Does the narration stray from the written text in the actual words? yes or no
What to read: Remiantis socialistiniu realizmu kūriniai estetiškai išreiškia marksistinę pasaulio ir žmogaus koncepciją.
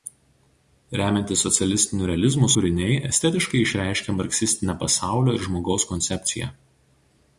no